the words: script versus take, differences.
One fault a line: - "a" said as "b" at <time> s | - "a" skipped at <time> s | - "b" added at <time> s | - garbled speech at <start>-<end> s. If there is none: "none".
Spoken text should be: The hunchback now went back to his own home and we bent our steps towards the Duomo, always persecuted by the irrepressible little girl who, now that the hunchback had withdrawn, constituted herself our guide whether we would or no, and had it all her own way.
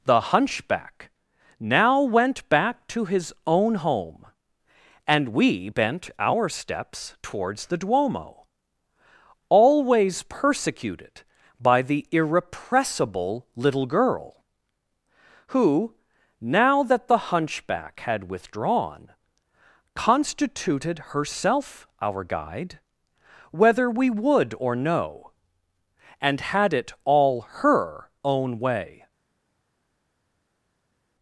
none